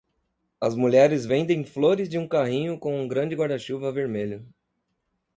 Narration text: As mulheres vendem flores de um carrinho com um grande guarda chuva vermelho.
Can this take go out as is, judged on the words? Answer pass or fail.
pass